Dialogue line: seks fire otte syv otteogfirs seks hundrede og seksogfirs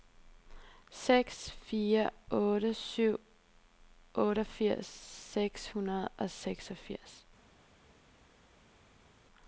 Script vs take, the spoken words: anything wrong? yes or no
no